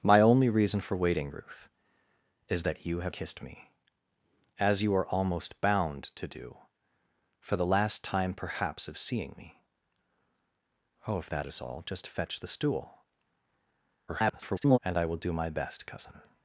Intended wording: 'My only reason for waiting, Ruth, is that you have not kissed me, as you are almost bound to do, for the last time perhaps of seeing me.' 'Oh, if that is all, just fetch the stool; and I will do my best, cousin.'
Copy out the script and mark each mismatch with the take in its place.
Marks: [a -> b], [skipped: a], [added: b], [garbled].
'My only reason for waiting, Ruth, is that you have [skipped: not] kissed me, as you are almost bound to do, for the last time perhaps of seeing me.' 'Oh, if that is all, just fetch the stool; [garbled] and I will do my best, cousin.'